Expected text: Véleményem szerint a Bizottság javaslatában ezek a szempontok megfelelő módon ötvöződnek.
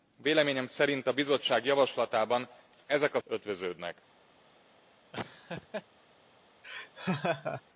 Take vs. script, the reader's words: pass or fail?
fail